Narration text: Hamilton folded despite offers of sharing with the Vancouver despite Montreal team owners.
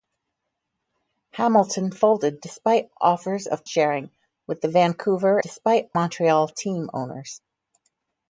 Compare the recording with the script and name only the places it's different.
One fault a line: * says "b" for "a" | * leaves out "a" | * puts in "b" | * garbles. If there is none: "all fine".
all fine